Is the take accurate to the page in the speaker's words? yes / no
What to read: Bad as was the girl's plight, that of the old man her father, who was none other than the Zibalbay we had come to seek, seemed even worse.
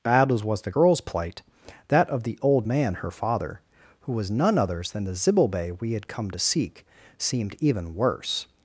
no